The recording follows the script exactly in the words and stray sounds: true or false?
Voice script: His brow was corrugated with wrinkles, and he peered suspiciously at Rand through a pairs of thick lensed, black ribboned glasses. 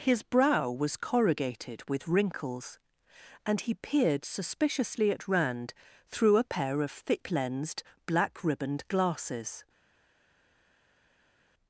false